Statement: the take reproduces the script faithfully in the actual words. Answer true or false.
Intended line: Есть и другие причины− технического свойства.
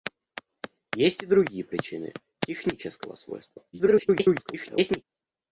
false